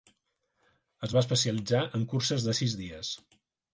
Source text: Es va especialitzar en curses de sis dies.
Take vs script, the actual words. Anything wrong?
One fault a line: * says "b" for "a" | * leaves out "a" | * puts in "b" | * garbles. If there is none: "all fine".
all fine